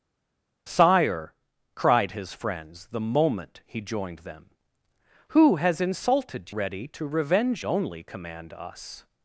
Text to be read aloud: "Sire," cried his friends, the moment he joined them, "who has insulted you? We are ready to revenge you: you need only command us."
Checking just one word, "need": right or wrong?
wrong